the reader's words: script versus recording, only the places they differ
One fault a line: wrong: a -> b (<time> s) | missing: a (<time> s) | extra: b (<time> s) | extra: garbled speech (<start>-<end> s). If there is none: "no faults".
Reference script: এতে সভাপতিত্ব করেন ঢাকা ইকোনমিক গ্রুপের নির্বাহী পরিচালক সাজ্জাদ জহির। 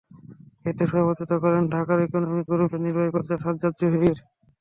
no faults